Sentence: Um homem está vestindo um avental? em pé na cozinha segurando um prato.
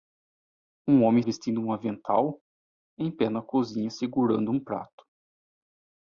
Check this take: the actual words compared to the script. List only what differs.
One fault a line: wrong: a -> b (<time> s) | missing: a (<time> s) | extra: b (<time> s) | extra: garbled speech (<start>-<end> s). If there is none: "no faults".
missing: está (1.2 s)